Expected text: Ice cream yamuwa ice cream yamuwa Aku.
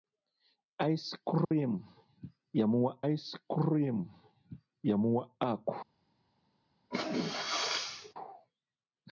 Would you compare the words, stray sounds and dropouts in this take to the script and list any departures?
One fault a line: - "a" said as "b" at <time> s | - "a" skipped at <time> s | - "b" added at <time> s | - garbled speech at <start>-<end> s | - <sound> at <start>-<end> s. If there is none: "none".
- dropout at 1.4-1.5 s
- sneeze at 6.9-8.1 s